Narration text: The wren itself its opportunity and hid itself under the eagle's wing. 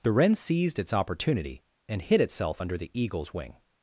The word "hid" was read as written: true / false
true